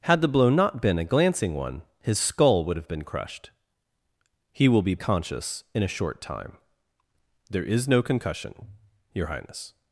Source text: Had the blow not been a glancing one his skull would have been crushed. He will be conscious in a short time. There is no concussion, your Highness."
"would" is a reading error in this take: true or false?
false